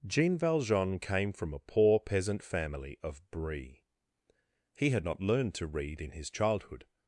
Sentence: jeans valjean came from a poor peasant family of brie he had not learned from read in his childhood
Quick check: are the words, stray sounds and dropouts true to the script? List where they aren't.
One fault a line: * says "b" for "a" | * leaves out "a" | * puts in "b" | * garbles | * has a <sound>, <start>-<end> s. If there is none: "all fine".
* says "jean" for "jeans"
* says "to" for "from"